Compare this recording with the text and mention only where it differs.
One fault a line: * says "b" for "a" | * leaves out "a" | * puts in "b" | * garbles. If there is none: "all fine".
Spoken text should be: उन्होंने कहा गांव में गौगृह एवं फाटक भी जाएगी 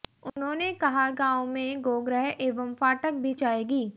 all fine